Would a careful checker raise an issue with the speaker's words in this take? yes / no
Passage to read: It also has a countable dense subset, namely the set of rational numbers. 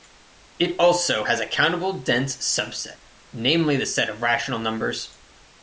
no